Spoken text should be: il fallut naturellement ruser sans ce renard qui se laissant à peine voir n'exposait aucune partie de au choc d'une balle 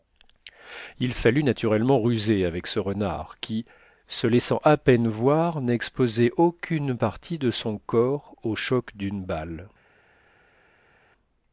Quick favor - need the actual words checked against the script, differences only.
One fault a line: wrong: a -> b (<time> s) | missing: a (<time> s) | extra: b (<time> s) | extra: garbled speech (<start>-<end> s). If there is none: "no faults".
wrong: sans -> avec (2.4 s)
extra: son corps (7.5 s)